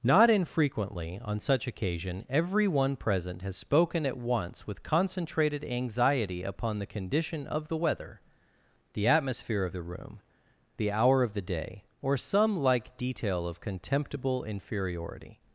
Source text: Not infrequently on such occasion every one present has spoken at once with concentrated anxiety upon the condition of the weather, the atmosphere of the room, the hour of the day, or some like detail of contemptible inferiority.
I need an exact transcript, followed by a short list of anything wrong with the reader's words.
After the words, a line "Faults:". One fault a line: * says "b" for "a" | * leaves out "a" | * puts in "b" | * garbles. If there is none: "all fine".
Not infrequently on such occasion every one present has spoken at once with concentrated anxiety upon the condition of the weather, the atmosphere of the room, the hour of the day, or some like detail of contemptible inferiority.
Faults:
all fine